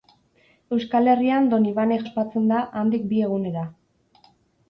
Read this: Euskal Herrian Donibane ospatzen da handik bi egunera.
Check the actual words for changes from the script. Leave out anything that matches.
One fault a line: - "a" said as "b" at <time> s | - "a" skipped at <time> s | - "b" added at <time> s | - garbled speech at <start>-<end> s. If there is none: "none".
none